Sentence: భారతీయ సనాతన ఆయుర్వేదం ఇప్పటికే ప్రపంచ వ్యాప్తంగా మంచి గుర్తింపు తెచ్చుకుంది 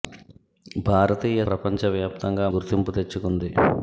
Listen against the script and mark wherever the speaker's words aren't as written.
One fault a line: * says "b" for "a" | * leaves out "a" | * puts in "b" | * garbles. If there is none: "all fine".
* leaves out "సనాతన ఆయుర్వేదం ఇప్పటికే"
* leaves out "మంచి"